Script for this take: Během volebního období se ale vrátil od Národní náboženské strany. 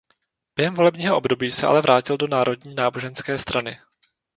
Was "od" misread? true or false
true